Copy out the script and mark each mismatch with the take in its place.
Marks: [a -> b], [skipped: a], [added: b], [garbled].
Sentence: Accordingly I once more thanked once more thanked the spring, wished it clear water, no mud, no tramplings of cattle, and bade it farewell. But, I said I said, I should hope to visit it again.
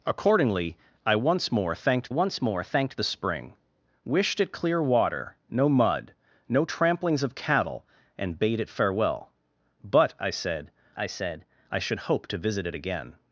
Accordingly I once more thanked once more thanked the spring, wished it clear water, no mud, no tramplings of cattle, and bade it farewell. But, I said I said, I should hope to visit it again.